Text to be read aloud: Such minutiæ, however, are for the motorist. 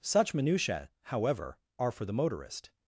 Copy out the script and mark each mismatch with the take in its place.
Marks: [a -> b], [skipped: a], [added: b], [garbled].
Such minutiæ, however, are for the motorist.